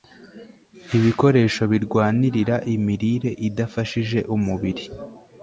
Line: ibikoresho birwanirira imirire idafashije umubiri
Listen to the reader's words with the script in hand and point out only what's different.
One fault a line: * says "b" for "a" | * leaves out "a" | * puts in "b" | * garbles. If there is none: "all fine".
all fine